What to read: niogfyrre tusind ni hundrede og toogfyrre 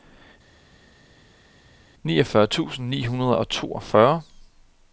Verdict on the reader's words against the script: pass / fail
pass